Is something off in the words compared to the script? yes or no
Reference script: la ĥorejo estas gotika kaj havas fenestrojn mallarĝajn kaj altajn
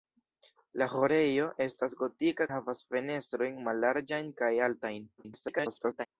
yes